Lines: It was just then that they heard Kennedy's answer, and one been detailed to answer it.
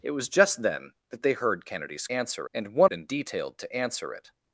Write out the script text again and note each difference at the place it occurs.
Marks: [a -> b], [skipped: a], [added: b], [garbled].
It was just then that they heard Kennedy's answer, and one been detailed to answer it.